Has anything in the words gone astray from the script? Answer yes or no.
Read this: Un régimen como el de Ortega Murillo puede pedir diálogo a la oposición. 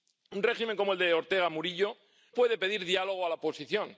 no